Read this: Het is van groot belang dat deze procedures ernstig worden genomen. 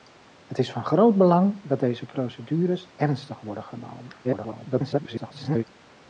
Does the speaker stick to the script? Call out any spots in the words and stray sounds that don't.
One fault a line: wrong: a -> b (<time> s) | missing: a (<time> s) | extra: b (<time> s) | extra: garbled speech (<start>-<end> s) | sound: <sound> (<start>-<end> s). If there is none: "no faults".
extra: garbled speech (4.2-5.6 s)